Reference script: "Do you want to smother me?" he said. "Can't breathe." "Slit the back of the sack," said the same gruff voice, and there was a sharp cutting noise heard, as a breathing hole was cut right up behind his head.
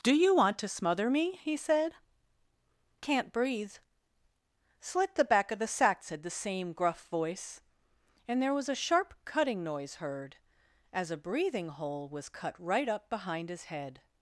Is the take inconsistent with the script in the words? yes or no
no